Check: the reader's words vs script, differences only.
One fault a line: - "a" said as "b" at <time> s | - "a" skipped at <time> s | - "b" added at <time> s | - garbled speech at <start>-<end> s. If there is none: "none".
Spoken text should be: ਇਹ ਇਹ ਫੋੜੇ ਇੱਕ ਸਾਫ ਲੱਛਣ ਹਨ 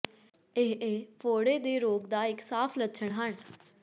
- "ਦੇ ਰੋਗ ਦਾ" added at 1.6 s